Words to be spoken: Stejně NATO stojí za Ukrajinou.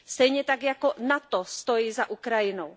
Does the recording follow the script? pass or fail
fail